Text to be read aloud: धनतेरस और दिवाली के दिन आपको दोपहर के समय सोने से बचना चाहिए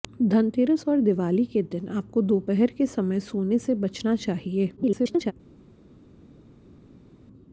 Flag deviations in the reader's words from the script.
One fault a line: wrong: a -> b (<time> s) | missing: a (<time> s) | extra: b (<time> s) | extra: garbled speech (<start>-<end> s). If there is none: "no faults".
extra: garbled speech (4.8-5.3 s)